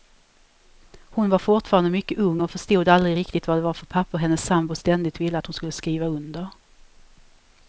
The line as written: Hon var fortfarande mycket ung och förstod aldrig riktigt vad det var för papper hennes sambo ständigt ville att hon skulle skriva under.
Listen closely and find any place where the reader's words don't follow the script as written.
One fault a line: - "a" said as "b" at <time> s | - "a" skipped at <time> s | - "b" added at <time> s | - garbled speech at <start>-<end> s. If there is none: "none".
none